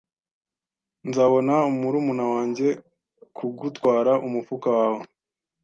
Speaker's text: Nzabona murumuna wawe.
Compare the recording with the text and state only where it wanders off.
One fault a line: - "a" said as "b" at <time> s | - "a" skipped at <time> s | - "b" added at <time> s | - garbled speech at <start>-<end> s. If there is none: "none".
- "wanjye kugutwara umufuka" added at 2.3 s